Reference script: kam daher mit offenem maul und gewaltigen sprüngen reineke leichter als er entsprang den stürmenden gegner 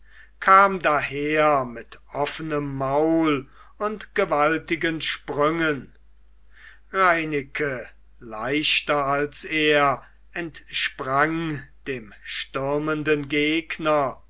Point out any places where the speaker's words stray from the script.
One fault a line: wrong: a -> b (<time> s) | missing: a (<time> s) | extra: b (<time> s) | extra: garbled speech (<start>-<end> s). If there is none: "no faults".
wrong: den -> dem (11.9 s)